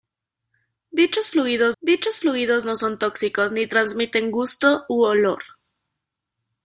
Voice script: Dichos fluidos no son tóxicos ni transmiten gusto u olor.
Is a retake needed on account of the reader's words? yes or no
yes